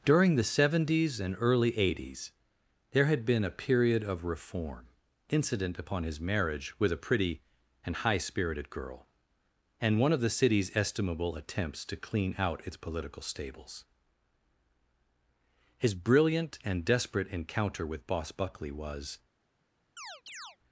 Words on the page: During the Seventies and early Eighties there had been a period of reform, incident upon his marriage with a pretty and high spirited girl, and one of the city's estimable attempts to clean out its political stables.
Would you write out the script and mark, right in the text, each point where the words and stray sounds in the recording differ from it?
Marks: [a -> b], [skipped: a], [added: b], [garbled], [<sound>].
During the Seventies and early Eighties there had been a period of reform, incident upon his marriage with a pretty and high spirited girl, and one of the city's estimable attempts to clean out its political stables. [added: His brilliant and desperate encounter with Boss Buckley was] [chirp]